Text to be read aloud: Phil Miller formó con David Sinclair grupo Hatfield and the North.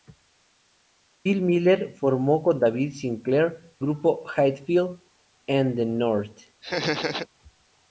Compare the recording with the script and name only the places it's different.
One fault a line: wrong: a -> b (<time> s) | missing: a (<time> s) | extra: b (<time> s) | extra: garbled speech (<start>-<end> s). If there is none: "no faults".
no faults